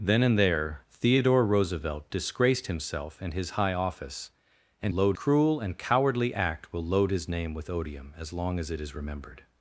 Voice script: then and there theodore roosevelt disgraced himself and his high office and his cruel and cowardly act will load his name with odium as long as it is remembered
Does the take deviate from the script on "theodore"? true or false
false